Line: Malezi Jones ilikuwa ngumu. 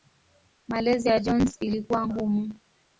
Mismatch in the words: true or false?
true